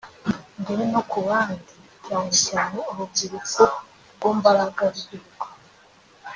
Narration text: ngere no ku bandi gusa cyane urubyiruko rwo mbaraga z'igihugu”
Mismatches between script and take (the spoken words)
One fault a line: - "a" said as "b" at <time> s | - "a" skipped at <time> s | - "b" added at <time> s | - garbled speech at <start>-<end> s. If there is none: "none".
- "gusa" said as "cyane" at 2.0 s